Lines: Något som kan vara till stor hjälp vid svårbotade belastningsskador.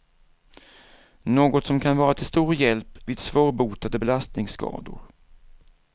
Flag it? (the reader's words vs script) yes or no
no